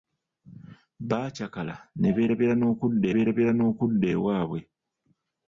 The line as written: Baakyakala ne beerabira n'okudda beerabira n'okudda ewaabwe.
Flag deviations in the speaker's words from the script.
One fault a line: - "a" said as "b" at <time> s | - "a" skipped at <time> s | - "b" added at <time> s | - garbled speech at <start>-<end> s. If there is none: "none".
none